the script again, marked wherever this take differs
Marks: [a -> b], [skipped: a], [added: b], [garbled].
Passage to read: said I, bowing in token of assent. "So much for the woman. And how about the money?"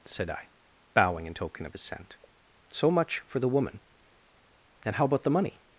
said I, bowing in token of assent. "So much for the woman. And how about the money?"